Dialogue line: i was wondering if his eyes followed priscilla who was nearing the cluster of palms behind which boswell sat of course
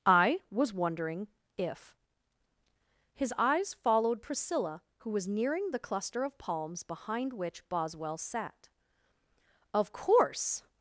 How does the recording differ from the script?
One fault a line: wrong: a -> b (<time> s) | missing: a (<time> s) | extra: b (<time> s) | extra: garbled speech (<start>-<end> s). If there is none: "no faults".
no faults